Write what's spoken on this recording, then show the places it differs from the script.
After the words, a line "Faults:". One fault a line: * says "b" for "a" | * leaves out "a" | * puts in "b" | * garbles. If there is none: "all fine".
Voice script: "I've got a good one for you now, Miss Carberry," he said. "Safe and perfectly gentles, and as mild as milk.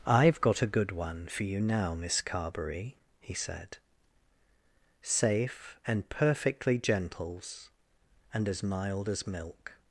"I've got a good one for you now, Miss Carberry," he said. "Safe and perfectly gentles, and as mild as milk.
Faults:
all fine